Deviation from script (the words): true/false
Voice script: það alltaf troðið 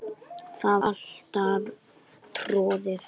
false